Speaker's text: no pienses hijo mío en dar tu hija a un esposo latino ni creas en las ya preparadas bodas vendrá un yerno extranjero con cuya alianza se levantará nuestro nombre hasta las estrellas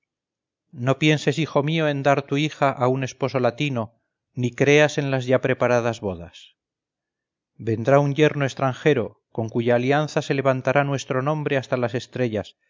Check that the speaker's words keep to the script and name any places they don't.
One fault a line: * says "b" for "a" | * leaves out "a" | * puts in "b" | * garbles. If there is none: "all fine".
all fine